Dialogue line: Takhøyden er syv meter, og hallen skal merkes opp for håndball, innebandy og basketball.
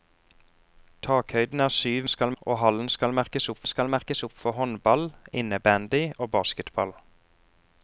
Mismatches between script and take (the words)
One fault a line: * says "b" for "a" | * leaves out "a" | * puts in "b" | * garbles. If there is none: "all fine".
* says "skal" for "meter"
* puts in "skal merkes opp"